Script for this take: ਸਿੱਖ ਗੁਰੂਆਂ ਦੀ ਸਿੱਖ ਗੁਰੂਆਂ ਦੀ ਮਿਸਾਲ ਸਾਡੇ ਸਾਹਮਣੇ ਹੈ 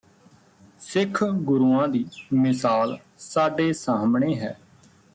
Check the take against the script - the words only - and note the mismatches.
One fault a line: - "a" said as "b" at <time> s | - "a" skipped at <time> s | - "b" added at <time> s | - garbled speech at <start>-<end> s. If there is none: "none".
- "ਸਿੱਖ ਗੁਰੂਆਂ ਦੀ" skipped at 2.0 s